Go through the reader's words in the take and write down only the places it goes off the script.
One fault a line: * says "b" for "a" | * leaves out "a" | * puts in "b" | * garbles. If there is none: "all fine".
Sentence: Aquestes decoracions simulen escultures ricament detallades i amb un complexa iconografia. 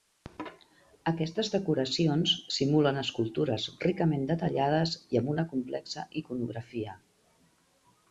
* says "una" for "un"